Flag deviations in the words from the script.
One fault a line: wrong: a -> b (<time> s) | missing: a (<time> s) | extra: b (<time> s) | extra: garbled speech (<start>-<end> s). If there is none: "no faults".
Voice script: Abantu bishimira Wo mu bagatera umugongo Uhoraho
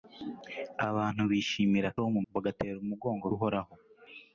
no faults